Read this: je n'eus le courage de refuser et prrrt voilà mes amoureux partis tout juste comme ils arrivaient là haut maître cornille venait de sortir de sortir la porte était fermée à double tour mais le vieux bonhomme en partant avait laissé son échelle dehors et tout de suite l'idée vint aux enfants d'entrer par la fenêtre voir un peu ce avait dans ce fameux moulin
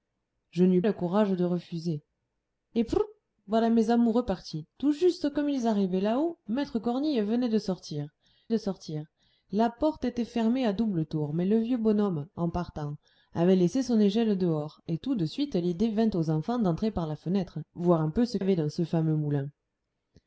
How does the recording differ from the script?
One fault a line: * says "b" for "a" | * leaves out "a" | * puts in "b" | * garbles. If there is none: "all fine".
all fine